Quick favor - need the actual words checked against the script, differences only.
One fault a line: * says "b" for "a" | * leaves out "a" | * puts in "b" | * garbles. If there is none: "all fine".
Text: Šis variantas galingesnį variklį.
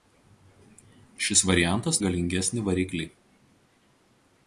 all fine